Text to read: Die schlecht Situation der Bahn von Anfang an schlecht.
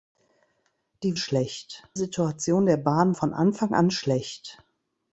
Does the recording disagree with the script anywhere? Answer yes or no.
no